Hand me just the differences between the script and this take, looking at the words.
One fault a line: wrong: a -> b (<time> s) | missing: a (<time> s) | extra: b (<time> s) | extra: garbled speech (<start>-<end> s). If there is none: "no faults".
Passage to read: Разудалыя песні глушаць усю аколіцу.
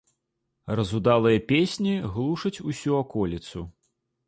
no faults